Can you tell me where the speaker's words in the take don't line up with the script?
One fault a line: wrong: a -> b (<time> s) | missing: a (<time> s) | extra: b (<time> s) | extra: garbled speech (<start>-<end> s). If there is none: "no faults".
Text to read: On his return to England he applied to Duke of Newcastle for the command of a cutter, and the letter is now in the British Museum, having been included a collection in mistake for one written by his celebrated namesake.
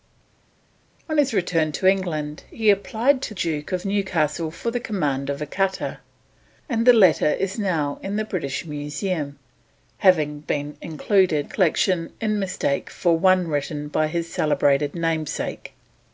no faults